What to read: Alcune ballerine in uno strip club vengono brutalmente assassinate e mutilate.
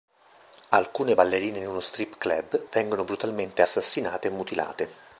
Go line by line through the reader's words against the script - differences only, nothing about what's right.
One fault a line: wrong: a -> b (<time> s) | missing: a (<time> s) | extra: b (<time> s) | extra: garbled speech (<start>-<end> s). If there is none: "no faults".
no faults